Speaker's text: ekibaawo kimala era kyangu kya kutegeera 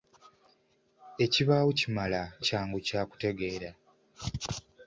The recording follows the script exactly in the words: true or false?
false